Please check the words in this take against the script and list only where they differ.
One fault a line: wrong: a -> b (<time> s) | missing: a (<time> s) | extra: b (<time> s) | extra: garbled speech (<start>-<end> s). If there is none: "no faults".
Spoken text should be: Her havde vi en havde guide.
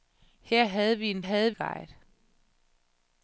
no faults